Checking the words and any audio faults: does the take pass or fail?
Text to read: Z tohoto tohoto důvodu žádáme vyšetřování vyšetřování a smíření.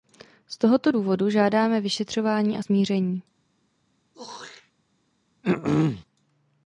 fail